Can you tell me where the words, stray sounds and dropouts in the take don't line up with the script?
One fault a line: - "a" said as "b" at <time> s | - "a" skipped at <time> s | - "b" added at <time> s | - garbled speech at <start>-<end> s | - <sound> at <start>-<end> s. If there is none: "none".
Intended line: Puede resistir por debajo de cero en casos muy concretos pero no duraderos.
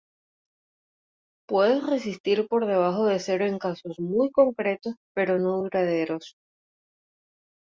none